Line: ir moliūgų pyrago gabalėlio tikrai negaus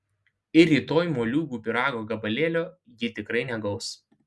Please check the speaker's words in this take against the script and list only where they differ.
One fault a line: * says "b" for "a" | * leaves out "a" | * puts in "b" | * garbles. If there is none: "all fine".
* puts in "rytoj"
* puts in "ji"